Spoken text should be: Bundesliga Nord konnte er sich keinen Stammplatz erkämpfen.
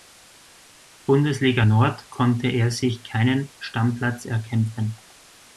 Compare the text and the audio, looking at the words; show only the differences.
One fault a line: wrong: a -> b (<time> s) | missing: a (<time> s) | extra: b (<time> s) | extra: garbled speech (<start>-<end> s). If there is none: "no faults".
no faults